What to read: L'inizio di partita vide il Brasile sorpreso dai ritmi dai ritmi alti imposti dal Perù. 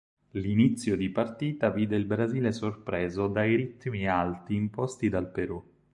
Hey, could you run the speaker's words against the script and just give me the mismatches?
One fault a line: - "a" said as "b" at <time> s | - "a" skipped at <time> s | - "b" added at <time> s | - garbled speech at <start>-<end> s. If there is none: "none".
- "dai ritmi" skipped at 4.1 s